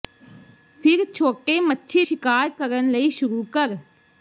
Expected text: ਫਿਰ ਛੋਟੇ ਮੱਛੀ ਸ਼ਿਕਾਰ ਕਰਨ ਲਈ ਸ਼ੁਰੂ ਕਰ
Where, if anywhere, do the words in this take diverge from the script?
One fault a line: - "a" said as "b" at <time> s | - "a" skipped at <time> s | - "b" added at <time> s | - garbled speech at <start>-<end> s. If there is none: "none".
none